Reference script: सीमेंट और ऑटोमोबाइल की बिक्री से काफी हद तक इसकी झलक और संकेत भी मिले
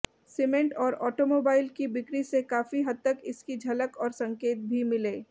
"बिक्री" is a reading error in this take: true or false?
false